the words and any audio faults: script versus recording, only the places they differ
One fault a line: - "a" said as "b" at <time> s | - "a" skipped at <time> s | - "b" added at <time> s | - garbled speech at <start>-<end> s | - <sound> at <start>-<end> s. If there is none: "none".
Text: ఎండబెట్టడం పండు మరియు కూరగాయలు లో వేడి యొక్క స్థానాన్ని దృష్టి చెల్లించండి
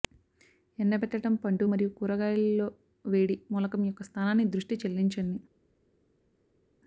- "మూలకం" added at 3.5 s